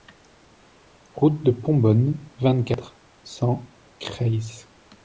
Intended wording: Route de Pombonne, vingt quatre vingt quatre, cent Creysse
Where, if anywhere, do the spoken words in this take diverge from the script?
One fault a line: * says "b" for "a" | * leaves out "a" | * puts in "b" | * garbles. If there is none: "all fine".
* leaves out "vingt quatre"